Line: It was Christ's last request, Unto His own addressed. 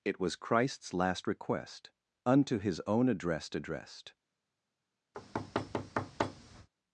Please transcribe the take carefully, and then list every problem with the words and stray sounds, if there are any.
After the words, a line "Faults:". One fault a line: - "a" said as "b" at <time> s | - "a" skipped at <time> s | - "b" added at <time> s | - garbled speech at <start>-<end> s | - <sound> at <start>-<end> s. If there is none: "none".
It was Christ's last request, Unto His own addressed addressed.
Faults:
- "addressed" added at 3.5 s
- thud at 5.1-6.7 s